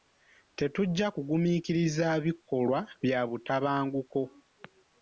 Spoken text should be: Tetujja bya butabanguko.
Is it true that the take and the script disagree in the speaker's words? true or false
true